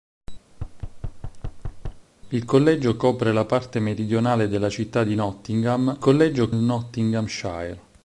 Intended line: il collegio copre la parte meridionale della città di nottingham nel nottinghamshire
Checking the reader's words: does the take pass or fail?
fail